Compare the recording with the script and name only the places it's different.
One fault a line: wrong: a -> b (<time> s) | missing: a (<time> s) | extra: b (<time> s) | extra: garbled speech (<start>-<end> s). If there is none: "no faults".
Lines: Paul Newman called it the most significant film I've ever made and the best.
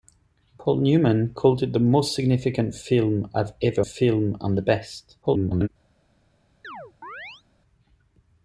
wrong: made -> film (3.8 s)
extra: garbled speech (5.2-5.7 s)